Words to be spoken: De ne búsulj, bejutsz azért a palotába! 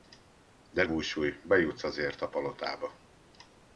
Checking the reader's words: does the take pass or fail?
fail